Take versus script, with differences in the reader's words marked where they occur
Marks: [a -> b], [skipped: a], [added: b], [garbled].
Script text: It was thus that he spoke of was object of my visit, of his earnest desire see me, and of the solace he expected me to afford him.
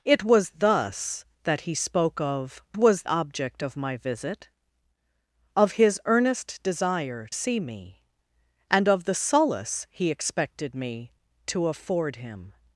It was thus that he spoke of was object of my visit, of his earnest desire see me, and of the solace he expected me to afford him.